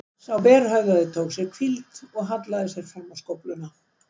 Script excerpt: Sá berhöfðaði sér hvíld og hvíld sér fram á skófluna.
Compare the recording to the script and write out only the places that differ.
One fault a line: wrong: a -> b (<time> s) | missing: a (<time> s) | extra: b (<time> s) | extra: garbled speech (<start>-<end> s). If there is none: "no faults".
extra: tók (1.2 s)
wrong: hvíld -> hallaði (2.3 s)